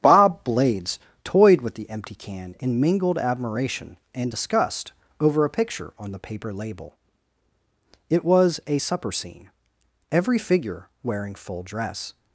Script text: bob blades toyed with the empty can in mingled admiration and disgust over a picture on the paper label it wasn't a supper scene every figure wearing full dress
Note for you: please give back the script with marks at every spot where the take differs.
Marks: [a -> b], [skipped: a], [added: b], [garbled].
bob blades toyed with the empty can in mingled admiration and disgust over a picture on the paper label it [wasn't -> was] a supper scene every figure wearing full dress